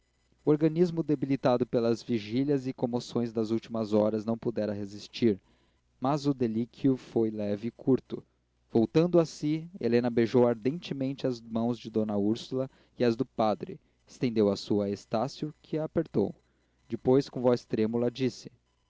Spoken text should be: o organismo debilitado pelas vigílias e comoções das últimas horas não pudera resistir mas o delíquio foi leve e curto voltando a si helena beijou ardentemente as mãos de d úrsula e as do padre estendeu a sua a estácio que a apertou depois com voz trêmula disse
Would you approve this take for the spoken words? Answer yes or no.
yes